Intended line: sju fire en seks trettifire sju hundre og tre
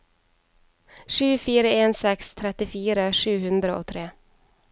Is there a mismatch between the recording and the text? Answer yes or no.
no